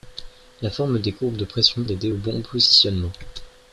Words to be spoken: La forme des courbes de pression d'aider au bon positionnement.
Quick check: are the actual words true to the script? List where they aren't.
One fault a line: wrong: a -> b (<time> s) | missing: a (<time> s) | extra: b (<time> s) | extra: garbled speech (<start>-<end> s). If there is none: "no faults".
no faults